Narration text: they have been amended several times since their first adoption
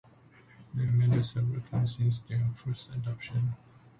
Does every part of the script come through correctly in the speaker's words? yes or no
no